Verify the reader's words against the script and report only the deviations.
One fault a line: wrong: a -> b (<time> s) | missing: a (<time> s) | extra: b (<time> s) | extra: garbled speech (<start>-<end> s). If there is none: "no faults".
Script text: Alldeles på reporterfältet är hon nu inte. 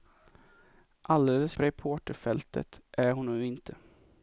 no faults